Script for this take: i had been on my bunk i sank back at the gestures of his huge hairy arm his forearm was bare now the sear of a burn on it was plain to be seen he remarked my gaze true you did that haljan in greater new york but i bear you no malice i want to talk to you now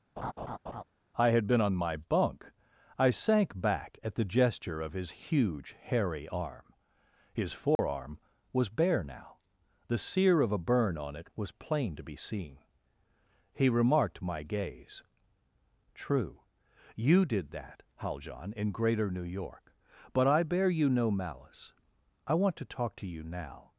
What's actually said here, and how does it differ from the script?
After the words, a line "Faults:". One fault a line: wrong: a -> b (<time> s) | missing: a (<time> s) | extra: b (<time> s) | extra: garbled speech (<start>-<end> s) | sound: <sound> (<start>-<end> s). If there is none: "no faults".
i had been on my bunk i sank back at the gesture of his huge hairy arm his forearm was bare now the sear of a burn on it was plain to be seen he remarked my gaze true you did that haljan in greater new york but i bear you no malice i want to talk to you now
Faults:
sound: laugh (0.2-0.8 s)
wrong: gestures -> gesture (4.2 s)
sound: dropout (7.8-7.8 s)